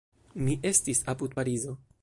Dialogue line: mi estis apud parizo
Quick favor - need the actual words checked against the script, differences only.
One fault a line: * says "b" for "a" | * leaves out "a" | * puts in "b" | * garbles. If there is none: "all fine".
all fine